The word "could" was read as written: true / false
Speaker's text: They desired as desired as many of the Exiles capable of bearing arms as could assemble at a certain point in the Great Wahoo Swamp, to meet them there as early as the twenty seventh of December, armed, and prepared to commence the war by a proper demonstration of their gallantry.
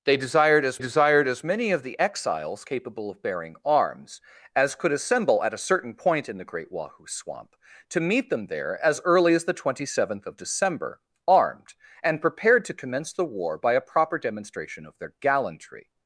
true